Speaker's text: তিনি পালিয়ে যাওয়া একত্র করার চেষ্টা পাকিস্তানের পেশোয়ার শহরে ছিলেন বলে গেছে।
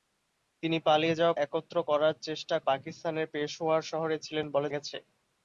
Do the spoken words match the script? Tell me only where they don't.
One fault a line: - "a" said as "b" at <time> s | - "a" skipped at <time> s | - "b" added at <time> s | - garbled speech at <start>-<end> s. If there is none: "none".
none